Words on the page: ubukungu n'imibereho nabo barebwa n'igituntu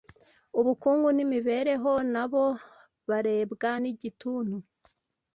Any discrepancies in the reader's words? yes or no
no